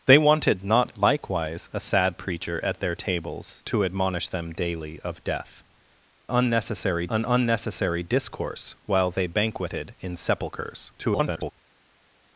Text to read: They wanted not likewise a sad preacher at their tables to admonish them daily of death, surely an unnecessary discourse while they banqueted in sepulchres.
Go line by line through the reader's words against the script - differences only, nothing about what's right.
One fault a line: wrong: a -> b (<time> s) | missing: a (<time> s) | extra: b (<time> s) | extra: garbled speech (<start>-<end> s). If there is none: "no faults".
wrong: surely -> unnecessary (6.3 s)
extra: garbled speech (11.0-11.5 s)